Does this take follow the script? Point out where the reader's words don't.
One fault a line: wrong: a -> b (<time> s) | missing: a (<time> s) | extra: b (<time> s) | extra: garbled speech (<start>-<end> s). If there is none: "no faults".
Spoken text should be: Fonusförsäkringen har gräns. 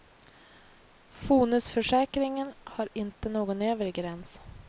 extra: inte någon övre (2.9 s)